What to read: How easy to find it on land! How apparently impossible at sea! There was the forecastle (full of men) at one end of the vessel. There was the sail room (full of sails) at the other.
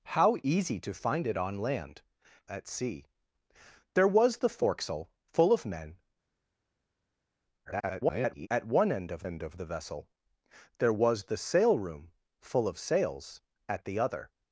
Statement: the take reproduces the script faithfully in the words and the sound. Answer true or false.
false